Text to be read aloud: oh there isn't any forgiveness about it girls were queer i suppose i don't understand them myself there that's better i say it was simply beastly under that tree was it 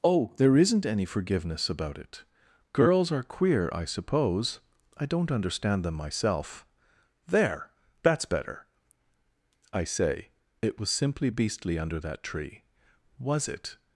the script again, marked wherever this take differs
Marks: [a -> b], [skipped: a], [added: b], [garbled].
oh there isn't any forgiveness about it girls [were -> are] queer i suppose i don't understand them myself there that's better i say it was simply beastly under that tree was it